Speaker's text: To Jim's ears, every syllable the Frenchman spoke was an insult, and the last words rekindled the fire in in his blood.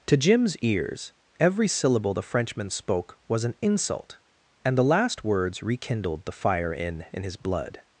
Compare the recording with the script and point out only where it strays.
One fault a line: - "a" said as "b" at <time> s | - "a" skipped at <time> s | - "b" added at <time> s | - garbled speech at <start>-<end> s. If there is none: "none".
none